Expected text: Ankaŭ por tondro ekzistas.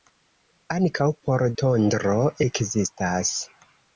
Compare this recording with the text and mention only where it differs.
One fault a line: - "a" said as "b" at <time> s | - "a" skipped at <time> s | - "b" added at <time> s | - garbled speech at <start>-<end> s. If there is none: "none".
none